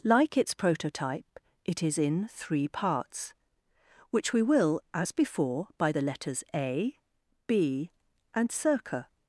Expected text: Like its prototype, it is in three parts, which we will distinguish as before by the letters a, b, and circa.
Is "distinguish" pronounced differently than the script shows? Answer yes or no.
yes